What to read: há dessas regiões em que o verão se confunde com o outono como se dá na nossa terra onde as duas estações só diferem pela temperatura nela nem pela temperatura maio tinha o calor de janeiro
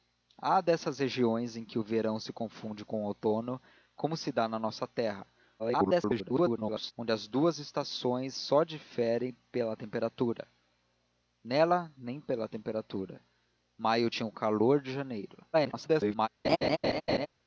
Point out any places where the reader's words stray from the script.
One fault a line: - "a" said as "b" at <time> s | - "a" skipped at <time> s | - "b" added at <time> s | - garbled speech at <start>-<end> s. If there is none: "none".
- garbled speech at 5.6-6.9 s
- garbled speech at 15.5-16.3 s